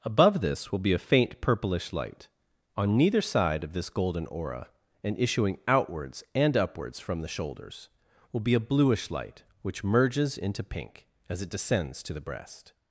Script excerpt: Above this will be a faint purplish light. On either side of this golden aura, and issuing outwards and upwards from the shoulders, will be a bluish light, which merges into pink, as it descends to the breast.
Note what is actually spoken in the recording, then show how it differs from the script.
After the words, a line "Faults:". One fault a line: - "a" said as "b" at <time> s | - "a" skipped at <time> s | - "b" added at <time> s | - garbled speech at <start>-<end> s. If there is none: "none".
Above this will be a faint purplish light. On neither side of this golden aura, and issuing outwards and upwards from the shoulders, will be a bluish light, which merges into pink, as it descends to the breast.
Faults:
- "either" said as "neither" at 3.0 s